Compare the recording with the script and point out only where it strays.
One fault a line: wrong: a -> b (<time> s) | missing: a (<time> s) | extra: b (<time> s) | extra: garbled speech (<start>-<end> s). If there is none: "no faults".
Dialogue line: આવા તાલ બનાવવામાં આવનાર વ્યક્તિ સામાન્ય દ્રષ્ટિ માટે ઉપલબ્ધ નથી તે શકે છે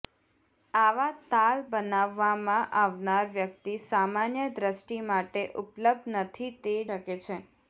no faults